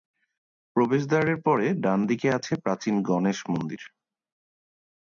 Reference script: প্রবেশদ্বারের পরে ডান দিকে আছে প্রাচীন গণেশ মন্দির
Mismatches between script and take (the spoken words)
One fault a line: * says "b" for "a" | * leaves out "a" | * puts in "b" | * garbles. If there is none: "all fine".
all fine